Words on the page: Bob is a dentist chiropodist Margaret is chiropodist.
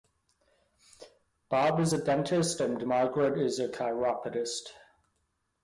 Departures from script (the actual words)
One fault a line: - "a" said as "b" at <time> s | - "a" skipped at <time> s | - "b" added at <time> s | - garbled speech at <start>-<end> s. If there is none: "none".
- "chiropodist" said as "and" at 2.6 s
- "a" added at 3.6 s